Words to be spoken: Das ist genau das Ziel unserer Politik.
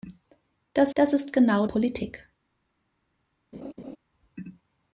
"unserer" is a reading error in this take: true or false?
true